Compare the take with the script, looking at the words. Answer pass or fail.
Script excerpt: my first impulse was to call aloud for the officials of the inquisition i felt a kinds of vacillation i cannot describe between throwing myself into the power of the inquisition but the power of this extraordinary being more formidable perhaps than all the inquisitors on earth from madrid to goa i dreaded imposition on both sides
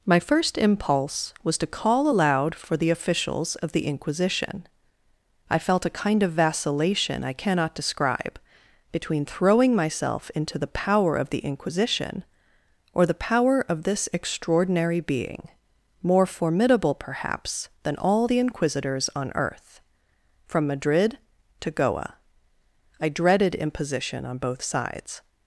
fail